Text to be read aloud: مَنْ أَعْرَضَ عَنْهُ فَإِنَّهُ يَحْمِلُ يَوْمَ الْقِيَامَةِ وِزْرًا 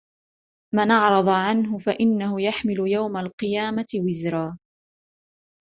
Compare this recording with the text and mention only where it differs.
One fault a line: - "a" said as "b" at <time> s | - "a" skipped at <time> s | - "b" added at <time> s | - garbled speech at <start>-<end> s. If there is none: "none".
none